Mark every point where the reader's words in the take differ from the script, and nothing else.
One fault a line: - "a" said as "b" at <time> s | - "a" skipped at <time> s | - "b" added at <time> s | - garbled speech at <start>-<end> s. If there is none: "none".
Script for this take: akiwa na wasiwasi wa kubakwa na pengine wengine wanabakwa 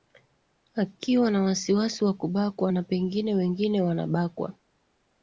none